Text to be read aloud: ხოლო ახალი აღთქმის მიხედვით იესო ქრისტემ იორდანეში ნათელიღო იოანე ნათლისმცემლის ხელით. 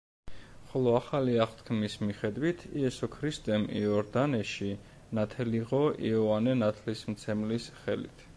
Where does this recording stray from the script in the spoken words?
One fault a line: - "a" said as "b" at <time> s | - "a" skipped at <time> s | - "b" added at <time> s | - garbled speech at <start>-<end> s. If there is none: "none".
none